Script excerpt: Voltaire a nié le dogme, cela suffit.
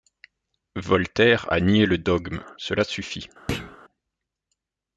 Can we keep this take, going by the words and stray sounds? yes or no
no